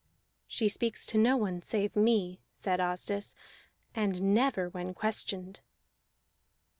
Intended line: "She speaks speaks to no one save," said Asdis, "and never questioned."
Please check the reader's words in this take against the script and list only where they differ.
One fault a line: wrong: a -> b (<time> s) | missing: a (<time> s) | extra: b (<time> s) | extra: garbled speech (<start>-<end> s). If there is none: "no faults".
missing: speaks (1.1 s)
extra: me (1.9 s)
extra: when (4.7 s)